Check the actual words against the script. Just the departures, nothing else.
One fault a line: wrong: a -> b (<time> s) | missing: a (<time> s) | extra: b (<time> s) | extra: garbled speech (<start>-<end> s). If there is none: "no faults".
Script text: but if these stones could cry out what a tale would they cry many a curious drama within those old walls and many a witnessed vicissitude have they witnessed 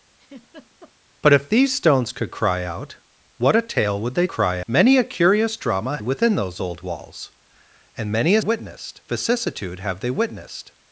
no faults